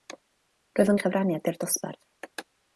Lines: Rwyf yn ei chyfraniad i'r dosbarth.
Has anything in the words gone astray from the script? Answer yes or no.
no